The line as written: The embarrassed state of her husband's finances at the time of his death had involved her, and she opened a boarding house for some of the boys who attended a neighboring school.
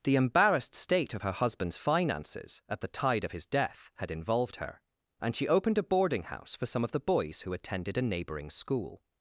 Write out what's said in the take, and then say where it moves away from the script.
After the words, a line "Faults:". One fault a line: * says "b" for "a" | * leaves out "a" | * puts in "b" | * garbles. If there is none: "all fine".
The embarrassed state of her husband's finances at the tide of his death had involved her, and she opened a boarding house for some of the boys who attended a neighboring school.
Faults:
* says "tide" for "time"